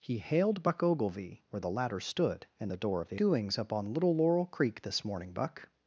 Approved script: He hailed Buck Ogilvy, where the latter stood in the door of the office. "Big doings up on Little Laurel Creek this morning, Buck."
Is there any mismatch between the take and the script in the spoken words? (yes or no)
yes